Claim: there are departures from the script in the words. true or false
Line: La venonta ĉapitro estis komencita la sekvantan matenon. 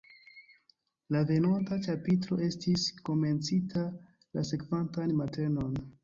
false